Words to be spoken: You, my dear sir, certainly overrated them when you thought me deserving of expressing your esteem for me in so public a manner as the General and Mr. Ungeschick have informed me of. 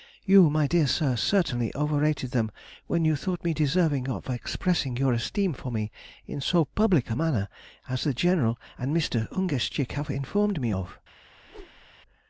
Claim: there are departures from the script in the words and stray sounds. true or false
true